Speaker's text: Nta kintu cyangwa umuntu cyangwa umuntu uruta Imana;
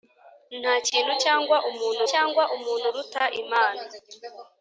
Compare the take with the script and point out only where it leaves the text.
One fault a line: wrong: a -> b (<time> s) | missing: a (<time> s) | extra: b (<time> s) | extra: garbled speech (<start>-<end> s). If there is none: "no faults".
no faults